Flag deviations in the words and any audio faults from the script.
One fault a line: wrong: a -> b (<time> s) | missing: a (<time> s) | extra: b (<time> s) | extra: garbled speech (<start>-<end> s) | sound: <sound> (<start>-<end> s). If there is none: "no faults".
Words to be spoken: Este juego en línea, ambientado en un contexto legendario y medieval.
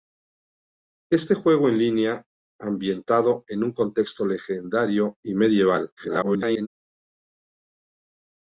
extra: garbled speech (6.0-6.7 s)